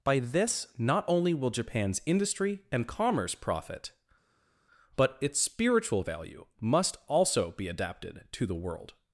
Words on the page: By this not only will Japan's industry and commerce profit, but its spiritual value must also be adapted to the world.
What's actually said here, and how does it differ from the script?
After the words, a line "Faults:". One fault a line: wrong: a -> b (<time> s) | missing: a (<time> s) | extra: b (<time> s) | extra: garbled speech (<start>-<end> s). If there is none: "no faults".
By this not only will Japan's industry and commerce profit, but its spiritual value must also be adapted to the world.
Faults:
no faults